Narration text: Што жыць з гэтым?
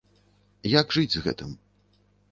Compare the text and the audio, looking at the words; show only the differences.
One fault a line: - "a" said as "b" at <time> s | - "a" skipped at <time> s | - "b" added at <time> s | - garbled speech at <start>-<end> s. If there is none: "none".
- "Што" said as "Як" at 0.8 s